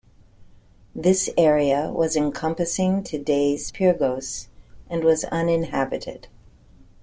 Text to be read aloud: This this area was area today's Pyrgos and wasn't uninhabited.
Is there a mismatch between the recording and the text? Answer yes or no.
yes